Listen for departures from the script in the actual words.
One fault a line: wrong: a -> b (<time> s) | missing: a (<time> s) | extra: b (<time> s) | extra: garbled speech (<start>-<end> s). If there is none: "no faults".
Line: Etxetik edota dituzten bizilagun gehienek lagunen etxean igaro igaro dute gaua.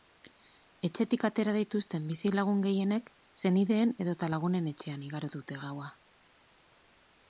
wrong: edota -> atera (1.3 s)
extra: senideen edota (3.4 s)
missing: igaro (5.3 s)